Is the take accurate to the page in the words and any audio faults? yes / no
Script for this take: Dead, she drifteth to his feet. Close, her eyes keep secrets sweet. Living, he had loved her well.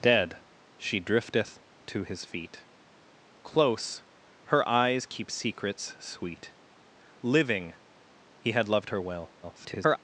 no